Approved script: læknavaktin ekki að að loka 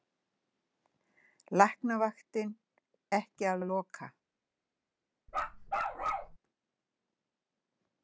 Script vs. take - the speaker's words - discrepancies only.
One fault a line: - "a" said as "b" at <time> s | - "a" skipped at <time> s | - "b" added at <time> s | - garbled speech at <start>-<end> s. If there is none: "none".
none